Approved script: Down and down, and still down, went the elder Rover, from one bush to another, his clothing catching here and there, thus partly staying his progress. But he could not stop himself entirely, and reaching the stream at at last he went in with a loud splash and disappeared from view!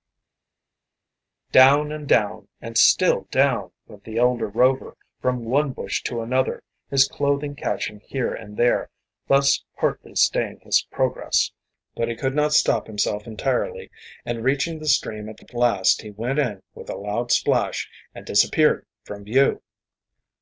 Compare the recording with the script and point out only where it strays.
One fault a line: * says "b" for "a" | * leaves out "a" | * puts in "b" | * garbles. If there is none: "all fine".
all fine